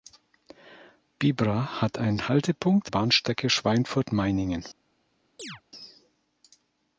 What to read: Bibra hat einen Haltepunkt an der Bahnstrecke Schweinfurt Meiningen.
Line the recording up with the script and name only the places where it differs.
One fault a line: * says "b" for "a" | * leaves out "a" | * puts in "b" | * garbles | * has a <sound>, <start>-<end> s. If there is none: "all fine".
* leaves out "an der"
* has a chirp, 5.4-5.6 s